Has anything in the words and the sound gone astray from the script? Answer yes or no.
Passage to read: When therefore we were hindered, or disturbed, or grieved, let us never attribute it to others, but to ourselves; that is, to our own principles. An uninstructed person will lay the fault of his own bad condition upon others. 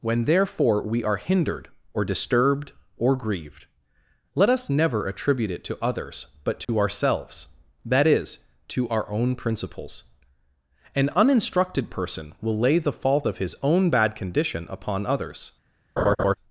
yes